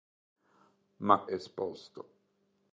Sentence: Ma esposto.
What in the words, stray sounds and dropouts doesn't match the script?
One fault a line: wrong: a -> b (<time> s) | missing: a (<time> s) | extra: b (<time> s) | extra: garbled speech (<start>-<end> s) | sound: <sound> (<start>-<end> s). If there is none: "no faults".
no faults